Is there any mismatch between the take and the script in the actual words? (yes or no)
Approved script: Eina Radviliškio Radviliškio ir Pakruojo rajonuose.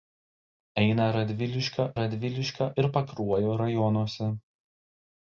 no